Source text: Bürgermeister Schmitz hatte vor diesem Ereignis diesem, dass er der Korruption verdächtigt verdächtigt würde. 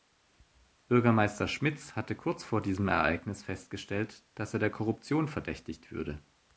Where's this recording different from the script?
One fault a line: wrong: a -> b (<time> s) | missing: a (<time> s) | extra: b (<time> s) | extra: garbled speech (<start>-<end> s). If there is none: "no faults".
extra: kurz (2.1 s)
wrong: diesem -> festgestellt (3.4 s)
missing: verdächtigt (5.9 s)